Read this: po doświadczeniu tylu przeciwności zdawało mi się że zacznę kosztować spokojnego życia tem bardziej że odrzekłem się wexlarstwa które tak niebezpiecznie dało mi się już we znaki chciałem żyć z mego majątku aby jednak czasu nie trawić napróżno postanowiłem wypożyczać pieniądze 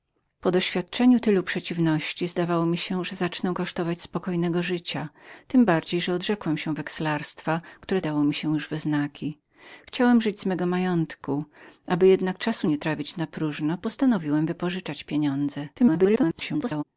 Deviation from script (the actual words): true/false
true